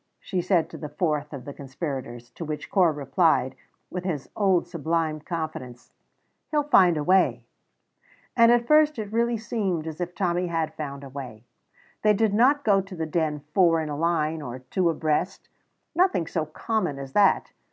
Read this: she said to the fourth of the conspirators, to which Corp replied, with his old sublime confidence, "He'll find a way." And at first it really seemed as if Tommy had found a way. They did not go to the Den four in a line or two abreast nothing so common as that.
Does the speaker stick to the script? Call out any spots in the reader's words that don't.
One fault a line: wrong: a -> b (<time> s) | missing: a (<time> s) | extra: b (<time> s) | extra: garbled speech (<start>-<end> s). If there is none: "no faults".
no faults